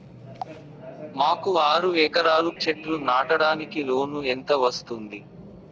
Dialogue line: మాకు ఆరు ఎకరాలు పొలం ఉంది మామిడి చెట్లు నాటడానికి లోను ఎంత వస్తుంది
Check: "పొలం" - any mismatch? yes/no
yes